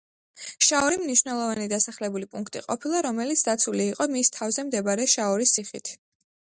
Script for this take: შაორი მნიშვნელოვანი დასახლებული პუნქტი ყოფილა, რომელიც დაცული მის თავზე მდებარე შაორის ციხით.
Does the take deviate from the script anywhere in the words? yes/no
yes